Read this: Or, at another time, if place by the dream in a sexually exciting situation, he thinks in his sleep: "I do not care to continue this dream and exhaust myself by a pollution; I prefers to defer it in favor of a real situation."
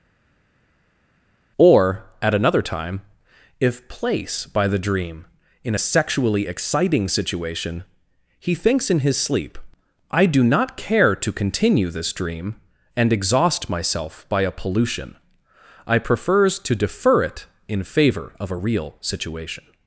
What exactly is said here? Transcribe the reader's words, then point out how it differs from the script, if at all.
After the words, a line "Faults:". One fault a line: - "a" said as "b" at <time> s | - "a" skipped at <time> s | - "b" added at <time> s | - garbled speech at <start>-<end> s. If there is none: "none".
Or, at another time, if place by the dream in a sexually exciting situation, he thinks in his sleep: "I do not care to continue this dream and exhaust myself by a pollution; I prefers to defer it in favor of a real situation."
Faults:
none